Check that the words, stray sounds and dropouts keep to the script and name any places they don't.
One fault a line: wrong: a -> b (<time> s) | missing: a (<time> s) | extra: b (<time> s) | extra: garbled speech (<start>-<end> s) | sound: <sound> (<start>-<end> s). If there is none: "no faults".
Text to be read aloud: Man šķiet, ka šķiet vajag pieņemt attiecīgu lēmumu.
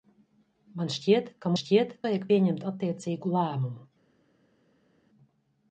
no faults